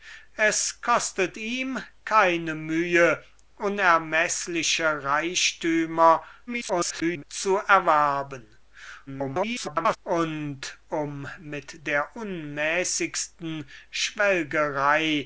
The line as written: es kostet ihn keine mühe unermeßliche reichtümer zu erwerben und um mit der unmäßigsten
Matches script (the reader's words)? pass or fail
fail